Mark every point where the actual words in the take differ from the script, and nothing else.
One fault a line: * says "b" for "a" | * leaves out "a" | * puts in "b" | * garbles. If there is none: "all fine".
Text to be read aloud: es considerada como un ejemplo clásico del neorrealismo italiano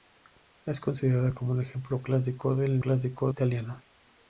* says "clásico" for "neorrealismo"